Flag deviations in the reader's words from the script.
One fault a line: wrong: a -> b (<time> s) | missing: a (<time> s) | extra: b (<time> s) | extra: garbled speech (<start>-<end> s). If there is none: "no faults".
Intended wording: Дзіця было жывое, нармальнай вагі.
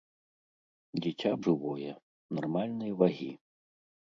missing: было (1.3 s)